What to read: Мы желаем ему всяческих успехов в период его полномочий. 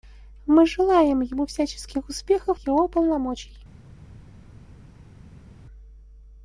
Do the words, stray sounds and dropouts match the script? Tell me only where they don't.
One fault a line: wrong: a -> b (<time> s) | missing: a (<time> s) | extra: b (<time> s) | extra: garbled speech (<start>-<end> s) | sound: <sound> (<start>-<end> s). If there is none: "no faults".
missing: в период (2.6 s)